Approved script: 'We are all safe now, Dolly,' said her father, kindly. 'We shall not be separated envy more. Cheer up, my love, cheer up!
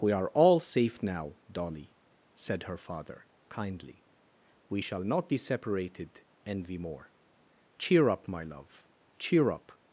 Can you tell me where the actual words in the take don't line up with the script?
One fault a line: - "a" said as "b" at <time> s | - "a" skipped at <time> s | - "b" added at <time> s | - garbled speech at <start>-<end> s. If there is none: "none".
none